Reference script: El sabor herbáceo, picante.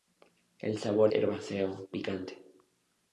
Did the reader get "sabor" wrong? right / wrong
right